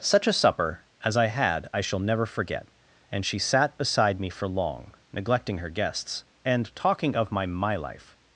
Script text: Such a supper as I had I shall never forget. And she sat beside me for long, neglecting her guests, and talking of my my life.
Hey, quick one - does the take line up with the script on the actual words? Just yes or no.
yes